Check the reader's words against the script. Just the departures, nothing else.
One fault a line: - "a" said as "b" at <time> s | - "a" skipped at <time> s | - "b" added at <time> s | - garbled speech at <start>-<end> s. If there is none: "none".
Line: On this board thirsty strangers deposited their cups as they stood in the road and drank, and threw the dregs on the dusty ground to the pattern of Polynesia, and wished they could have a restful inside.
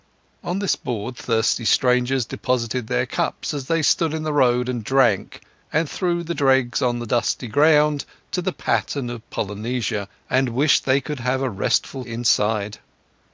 none